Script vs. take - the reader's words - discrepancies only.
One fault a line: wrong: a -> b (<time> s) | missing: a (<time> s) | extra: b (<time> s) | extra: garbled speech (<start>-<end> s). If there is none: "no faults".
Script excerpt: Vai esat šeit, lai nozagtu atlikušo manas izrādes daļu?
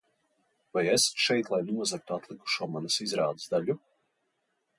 no faults